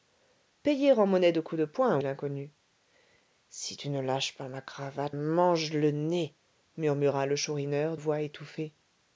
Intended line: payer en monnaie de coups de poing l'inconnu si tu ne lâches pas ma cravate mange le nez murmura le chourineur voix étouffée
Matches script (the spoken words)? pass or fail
pass